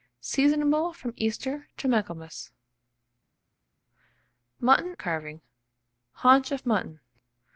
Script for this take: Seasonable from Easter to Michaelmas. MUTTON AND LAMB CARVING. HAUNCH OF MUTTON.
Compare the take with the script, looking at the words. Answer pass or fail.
fail